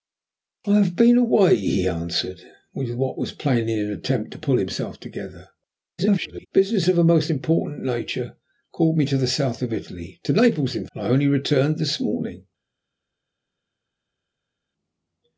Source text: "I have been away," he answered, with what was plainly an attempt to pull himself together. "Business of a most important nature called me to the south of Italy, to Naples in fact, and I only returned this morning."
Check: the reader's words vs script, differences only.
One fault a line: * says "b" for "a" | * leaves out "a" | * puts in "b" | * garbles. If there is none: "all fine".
* garbles
* leaves out "fact"